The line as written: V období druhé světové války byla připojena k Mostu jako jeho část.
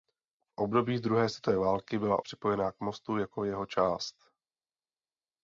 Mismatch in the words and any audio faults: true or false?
false